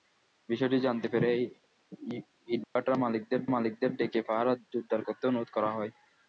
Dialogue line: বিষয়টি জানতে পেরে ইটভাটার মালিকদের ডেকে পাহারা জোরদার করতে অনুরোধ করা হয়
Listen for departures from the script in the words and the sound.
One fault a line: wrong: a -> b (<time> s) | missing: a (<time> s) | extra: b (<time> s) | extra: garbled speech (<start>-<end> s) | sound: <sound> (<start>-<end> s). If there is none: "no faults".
sound: dropout (2.6-2.8 s)
extra: মালিকদের (3.5 s)